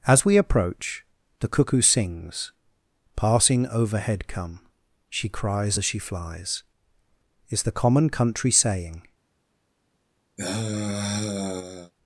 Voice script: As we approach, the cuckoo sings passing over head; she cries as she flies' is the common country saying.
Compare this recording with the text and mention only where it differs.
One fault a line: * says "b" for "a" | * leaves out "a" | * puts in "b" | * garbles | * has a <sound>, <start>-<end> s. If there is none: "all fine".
* says "overhead come" for "over head"
* has a sigh, 10.4-11.9 s